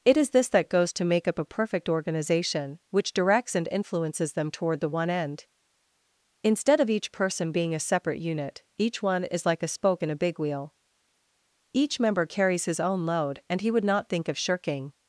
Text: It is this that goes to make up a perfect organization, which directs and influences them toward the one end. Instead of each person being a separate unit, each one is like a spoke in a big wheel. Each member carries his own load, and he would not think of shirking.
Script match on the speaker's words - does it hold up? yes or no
yes